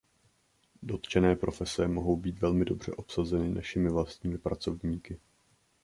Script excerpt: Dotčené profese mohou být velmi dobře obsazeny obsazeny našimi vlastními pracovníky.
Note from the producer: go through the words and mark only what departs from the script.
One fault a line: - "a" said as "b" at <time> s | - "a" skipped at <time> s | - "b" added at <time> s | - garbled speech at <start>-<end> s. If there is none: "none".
- "obsazeny" skipped at 3.5 s